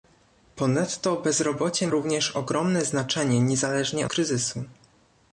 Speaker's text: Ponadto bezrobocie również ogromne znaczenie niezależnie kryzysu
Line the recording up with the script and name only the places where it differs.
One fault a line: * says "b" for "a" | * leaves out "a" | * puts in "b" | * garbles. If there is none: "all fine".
all fine